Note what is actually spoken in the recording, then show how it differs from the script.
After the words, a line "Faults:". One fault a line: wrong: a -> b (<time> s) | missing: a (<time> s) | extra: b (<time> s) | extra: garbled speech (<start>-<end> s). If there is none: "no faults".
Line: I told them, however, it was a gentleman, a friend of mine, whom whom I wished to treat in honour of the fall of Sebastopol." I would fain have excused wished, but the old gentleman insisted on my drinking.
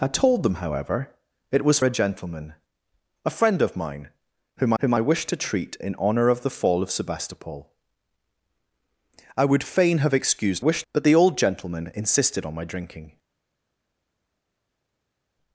I told them, however, it was a gentleman, a friend of mine, whom whom I wished to treat in honour of the fall of Sebastopol." I would fain have excused wished, but the old gentleman insisted on my drinking.
Faults:
no faults